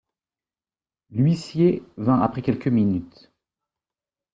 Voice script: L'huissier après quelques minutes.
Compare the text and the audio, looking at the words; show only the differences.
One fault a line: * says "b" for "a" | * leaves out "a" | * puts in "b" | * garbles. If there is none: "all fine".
* puts in "vint"